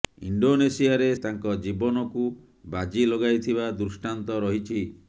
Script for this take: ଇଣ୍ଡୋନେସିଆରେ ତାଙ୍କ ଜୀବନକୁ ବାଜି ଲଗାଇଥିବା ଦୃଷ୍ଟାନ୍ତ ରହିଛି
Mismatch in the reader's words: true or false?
false